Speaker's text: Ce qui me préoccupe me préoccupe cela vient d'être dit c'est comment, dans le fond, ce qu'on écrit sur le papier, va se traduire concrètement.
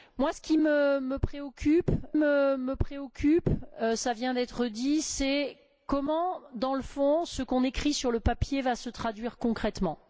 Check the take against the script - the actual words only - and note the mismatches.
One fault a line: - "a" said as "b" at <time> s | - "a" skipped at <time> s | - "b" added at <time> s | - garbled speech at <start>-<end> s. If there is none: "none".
none